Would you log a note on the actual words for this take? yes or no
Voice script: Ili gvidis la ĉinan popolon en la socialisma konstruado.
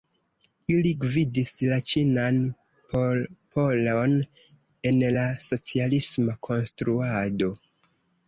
no